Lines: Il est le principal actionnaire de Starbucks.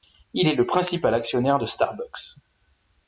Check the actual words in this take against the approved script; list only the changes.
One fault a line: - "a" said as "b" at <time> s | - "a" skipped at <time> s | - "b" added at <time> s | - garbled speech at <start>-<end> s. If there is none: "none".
none